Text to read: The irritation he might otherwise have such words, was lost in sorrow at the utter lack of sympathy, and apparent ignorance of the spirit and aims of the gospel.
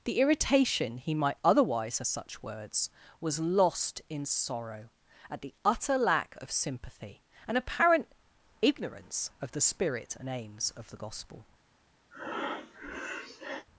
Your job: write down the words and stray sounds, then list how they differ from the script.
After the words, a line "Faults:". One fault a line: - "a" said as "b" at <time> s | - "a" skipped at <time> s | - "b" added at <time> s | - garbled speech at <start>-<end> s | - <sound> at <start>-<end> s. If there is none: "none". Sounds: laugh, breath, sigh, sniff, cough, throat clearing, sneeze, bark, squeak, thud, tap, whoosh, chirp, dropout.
The irritation he might otherwise have such words, was lost in sorrow at the utter lack of sympathy, and apparent ignorance of the spirit and aims of the gospel.
Faults:
- breath at 12.1-13.7 s